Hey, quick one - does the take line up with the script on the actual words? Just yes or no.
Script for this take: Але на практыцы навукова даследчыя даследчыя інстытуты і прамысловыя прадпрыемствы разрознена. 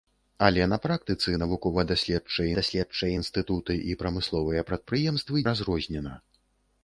yes